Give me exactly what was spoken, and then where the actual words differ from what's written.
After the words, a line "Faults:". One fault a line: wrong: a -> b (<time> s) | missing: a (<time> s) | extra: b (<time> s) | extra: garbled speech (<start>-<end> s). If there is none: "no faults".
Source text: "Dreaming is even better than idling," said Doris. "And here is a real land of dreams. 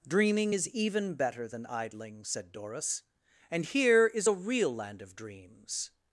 "Dreaming is even better than idling," said Doris. "And here is a real land of dreams.
Faults:
no faults